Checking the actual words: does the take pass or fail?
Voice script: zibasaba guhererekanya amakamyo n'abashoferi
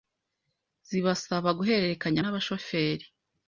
fail